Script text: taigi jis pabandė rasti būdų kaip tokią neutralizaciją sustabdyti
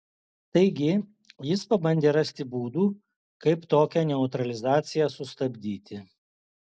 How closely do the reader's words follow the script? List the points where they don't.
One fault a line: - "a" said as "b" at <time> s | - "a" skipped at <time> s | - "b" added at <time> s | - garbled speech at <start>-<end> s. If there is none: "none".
none